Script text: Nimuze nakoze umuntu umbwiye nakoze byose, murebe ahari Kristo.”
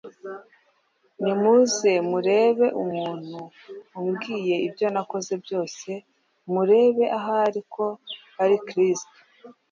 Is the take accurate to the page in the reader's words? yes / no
no